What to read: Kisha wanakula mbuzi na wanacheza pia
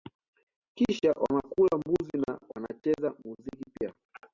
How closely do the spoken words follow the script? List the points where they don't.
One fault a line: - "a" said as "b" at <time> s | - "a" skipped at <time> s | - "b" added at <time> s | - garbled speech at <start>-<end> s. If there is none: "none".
- "muziki" added at 3.2 s